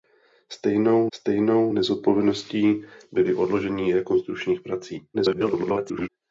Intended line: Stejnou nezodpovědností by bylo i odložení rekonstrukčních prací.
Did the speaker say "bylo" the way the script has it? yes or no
no